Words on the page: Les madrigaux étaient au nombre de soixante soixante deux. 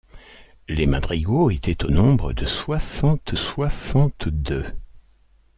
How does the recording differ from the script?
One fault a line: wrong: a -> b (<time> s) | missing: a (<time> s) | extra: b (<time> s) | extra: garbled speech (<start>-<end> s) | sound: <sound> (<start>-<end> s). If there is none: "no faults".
no faults